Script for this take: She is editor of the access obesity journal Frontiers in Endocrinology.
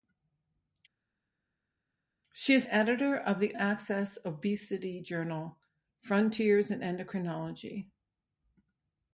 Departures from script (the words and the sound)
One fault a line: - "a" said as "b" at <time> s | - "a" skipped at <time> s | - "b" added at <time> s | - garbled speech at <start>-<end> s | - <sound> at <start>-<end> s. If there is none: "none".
none